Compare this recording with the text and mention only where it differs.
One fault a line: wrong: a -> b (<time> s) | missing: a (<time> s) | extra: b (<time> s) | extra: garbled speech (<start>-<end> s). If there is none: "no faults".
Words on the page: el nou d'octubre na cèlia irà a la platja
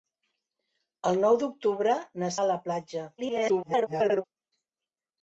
missing: cèlia irà (2.3 s)
extra: garbled speech (3.2-4.2 s)